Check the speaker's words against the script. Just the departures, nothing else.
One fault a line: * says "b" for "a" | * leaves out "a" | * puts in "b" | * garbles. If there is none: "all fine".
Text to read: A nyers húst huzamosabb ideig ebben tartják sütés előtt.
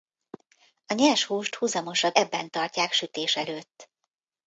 * leaves out "ideig"